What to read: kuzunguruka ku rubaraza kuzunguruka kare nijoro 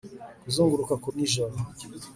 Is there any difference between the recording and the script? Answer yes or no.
yes